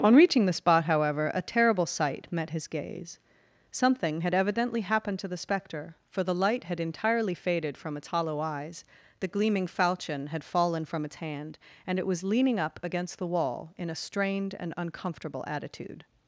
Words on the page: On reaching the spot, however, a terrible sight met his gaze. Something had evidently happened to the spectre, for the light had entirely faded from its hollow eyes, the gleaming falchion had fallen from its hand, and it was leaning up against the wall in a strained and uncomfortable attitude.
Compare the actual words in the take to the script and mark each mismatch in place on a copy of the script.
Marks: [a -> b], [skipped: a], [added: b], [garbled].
On reaching the spot, however, a terrible sight met his gaze. Something had evidently happened to the spectre, for the light had entirely faded from its hollow eyes, the gleaming falchion had fallen from its hand, and it was leaning up against the wall in a strained and uncomfortable attitude.